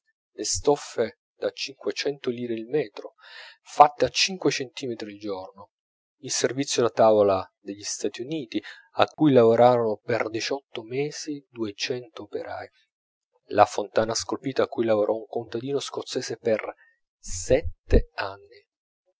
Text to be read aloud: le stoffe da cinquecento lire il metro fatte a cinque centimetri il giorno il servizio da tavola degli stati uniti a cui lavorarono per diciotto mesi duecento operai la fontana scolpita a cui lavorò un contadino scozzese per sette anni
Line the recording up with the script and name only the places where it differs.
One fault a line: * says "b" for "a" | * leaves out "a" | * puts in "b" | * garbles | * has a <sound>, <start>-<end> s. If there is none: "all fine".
* has a dropout, 9.1-9.2 s